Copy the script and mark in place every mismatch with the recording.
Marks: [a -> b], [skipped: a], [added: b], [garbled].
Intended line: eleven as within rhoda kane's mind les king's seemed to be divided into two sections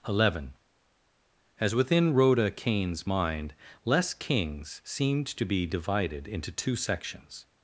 eleven as within rhoda kane's mind les king's seemed to be divided into two sections